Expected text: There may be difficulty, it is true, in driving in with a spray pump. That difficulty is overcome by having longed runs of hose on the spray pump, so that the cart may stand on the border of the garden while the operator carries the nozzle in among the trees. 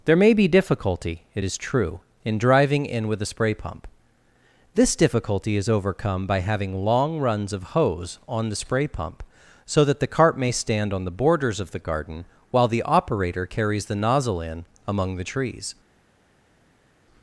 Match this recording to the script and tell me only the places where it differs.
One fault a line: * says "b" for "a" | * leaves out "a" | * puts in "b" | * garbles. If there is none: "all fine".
* says "This" for "That"
* says "long" for "longed"
* says "borders" for "border"